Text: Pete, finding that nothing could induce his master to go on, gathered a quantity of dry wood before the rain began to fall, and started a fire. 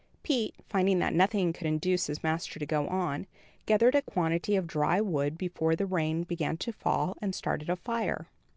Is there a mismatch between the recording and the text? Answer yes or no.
no